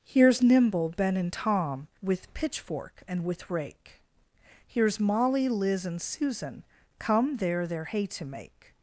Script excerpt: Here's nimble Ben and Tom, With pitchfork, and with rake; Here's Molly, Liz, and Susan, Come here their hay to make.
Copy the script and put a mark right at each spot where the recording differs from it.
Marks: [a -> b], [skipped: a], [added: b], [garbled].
Here's nimble Ben and Tom, With pitchfork, and with rake; Here's Molly, Liz, and Susan, Come [here -> there] their hay to make.